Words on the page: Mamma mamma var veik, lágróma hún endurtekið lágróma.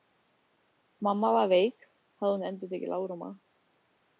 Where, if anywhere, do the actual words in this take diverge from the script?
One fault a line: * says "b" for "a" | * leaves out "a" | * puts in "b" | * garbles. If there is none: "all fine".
* leaves out "mamma"
* says "hafði" for "lágróma"